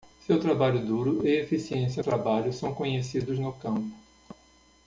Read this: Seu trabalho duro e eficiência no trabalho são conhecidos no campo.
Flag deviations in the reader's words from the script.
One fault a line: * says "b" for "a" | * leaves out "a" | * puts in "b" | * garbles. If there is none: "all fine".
* leaves out "no"